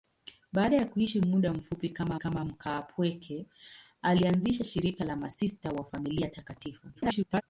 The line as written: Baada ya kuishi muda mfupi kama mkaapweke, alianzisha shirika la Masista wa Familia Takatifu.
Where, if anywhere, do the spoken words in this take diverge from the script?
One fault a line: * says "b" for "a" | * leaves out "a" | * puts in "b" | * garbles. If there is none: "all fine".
* puts in "kama"
* garbles